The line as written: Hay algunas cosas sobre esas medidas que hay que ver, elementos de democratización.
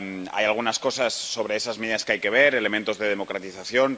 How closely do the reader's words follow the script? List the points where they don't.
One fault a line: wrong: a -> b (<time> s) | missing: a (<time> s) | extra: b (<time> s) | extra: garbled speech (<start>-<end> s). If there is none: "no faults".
no faults